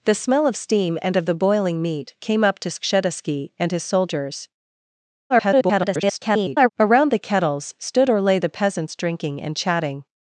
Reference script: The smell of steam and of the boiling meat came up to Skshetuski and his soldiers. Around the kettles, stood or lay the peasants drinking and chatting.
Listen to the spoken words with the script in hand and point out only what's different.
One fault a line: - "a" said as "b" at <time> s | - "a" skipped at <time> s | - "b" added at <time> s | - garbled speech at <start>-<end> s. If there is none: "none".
- garbled speech at 5.3-6.7 s